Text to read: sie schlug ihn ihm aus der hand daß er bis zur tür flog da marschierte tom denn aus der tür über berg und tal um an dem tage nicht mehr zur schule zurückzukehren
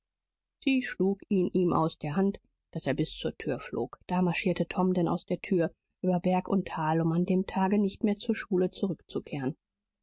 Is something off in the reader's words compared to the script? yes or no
no